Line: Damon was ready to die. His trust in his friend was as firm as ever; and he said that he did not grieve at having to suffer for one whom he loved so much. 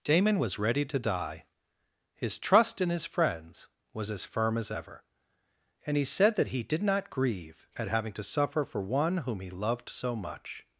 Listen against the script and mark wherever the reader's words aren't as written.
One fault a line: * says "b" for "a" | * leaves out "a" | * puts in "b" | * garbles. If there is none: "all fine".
* says "friends" for "friend"